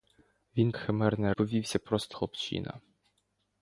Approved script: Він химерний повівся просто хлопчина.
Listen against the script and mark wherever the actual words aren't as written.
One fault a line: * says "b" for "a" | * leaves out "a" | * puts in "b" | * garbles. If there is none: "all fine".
all fine